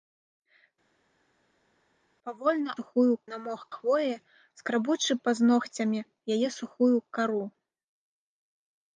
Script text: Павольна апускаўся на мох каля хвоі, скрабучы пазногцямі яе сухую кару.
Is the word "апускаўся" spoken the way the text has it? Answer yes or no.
no